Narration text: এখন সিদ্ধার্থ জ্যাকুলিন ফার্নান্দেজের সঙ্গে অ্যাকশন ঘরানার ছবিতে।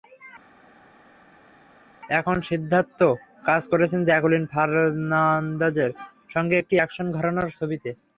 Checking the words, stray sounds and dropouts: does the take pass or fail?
fail